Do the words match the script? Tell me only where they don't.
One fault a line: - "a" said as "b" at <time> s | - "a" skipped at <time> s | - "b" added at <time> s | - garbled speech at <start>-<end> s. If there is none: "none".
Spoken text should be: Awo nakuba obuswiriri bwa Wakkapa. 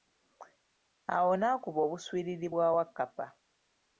none